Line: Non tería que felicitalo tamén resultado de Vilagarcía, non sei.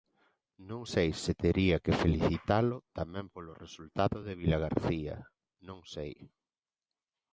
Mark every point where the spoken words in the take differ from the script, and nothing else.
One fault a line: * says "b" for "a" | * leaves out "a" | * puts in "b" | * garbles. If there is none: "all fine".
* puts in "sei se"
* puts in "polo"